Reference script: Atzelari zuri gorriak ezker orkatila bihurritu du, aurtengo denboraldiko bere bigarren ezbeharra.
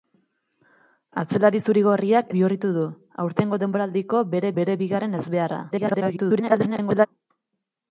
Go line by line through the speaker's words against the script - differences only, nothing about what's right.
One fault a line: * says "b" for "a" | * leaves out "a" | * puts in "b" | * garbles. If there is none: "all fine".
* leaves out "ezker orkatila"
* puts in "bere"
* garbles